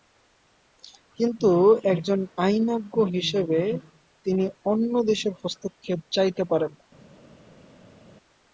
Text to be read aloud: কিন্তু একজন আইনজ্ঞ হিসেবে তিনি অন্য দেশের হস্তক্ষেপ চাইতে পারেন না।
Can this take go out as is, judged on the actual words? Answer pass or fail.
pass